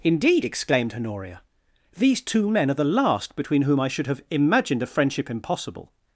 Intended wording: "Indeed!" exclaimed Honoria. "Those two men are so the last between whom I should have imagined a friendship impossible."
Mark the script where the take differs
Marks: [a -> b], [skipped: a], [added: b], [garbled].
"Indeed!" exclaimed Honoria. ["Those -> These] two men are [skipped: so] the last between whom I should have imagined a friendship impossible."